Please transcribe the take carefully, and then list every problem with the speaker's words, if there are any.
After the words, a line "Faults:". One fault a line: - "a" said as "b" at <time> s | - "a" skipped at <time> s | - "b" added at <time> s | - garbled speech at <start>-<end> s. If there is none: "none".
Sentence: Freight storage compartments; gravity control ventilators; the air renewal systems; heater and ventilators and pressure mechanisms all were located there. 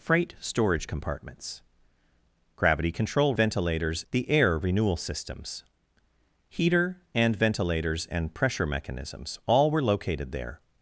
Freight storage compartments; gravity control ventilators; the air renewal systems; heater and ventilators and pressure mechanisms all were located there.
Faults:
none